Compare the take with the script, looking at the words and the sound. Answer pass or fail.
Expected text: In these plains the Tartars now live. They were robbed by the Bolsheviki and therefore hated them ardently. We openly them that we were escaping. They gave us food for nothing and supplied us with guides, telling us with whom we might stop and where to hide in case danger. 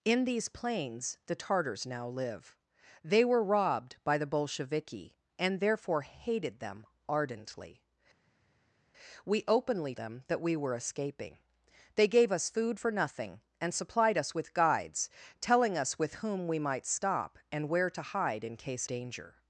pass